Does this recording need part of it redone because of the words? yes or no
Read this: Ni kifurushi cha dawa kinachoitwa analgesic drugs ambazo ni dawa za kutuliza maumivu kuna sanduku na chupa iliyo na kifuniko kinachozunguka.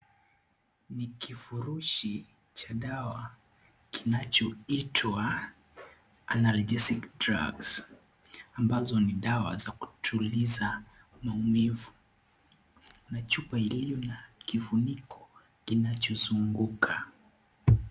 yes